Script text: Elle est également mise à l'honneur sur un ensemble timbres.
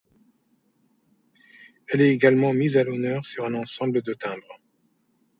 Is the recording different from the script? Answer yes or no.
yes